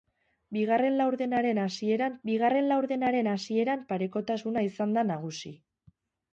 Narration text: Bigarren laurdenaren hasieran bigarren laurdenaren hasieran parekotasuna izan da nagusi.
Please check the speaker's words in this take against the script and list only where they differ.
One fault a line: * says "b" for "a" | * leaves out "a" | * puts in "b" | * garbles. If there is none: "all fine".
all fine